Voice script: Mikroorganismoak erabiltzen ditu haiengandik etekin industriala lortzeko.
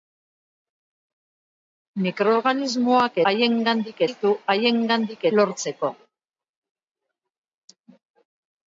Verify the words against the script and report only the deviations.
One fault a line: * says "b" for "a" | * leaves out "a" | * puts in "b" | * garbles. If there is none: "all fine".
* says "haiengandik" for "erabiltzen"
* leaves out "etekin industriala"